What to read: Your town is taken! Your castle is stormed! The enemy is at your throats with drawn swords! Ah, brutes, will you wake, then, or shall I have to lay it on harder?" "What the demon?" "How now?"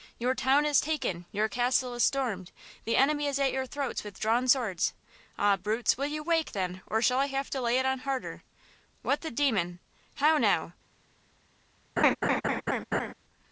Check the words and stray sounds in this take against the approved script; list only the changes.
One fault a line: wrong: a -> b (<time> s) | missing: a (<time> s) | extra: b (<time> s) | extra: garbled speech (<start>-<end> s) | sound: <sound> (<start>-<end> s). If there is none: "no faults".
sound: laugh (12.0-13.1 s)